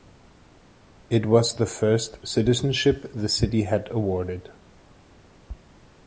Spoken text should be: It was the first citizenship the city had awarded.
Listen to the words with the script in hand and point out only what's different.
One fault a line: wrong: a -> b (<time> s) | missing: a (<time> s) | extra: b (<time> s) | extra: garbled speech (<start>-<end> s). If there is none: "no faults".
no faults